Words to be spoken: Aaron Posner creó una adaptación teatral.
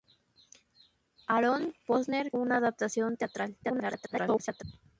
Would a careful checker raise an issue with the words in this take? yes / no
yes